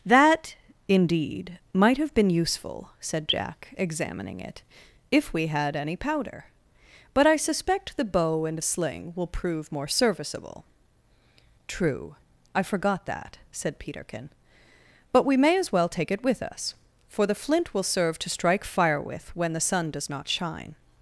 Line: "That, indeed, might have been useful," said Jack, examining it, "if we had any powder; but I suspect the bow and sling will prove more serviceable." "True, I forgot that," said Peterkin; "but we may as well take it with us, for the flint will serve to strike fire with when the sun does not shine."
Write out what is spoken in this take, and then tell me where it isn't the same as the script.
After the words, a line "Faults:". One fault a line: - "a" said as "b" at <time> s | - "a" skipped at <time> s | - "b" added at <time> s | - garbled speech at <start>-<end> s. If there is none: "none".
"That, indeed, might have been useful," said Jack, examining it, "if we had any powder; but I suspect the bow and sling will prove more serviceable." "True, I forgot that," said Peterkin; "but we may as well take it with us, for the flint will serve to strike fire with when the sun does not shine."
Faults:
none